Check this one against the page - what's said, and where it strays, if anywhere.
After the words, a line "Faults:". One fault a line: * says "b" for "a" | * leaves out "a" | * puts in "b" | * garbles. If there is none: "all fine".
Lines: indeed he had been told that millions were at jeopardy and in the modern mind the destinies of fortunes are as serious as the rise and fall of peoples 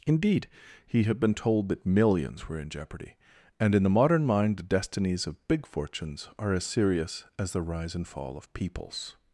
indeed he had been told that millions were in jeopardy and in the modern mind the destinies of big fortunes are as serious as the rise and fall of peoples
Faults:
* says "in" for "at"
* puts in "big"